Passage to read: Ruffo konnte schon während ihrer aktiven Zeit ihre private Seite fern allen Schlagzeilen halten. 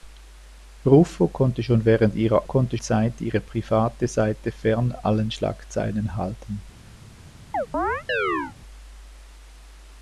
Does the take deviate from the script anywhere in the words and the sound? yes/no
yes